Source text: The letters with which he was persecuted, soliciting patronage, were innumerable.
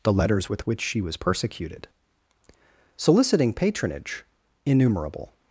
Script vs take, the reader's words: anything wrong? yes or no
yes